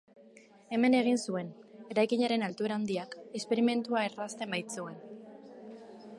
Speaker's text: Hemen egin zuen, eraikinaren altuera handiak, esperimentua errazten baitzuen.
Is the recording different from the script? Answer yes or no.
no